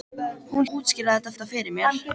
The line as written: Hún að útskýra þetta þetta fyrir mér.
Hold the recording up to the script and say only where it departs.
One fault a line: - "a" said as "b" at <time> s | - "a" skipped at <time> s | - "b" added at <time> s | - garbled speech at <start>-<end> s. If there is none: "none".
none